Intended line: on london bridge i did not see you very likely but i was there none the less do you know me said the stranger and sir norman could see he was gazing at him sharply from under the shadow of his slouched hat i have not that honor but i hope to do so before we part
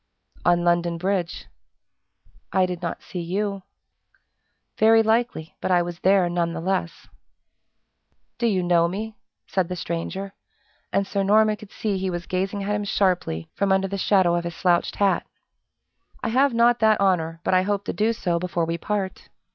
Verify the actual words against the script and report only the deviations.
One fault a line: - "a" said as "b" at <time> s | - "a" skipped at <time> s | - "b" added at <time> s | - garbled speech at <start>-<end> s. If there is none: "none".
none